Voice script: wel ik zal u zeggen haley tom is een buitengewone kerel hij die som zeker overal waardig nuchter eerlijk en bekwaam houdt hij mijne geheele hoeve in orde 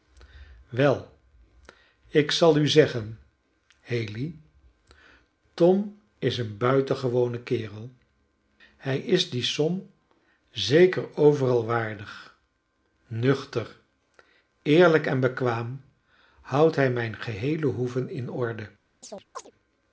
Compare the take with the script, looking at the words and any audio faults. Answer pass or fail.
fail